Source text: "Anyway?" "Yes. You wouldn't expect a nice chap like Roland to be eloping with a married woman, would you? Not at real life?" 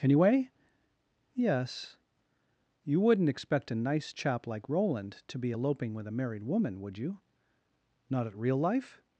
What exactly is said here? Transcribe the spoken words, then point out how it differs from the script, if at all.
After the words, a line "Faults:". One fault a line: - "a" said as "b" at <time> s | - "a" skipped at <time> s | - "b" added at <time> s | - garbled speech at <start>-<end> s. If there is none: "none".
"Anyway?" "Yes. You wouldn't expect a nice chap like Roland to be eloping with a married woman, would you? Not at real life?"
Faults:
none